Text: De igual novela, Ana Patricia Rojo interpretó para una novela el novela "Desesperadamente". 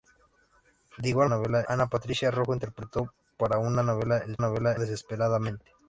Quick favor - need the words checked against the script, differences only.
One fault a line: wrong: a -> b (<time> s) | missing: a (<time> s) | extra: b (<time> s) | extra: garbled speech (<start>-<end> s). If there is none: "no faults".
no faults